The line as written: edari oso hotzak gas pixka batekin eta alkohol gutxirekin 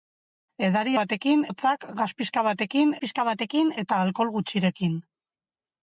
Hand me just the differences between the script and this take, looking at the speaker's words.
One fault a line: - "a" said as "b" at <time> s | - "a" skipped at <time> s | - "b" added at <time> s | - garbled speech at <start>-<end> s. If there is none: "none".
- "oso" said as "batekin" at 1.0 s
- "pixka batekin" added at 3.0 s